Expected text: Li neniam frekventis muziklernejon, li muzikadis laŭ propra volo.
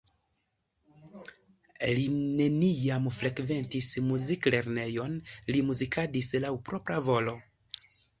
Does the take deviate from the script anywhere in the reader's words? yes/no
no